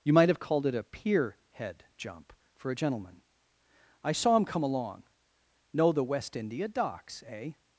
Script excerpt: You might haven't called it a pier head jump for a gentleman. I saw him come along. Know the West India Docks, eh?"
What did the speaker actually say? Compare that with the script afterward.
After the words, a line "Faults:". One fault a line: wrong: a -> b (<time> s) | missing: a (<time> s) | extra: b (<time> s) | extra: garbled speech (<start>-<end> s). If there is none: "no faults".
You might have called it a pier head jump for a gentleman. I saw him come along. Know the West India Docks, eh?"
Faults:
wrong: haven't -> have (0.3 s)